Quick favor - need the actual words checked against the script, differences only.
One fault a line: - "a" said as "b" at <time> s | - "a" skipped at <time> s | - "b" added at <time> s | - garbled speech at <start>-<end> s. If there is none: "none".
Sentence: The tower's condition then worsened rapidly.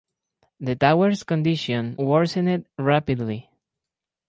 - "then" skipped at 2.0 s